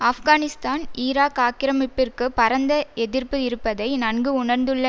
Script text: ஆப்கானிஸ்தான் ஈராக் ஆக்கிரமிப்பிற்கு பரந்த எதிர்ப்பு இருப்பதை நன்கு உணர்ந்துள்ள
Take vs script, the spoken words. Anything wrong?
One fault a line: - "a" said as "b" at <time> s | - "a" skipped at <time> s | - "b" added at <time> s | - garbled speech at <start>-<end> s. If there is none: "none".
none